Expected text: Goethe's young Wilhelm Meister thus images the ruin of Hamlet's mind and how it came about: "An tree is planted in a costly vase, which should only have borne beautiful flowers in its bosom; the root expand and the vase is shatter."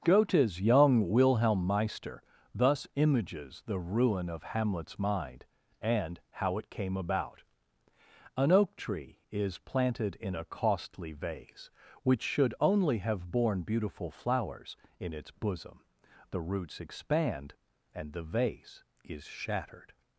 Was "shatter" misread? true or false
true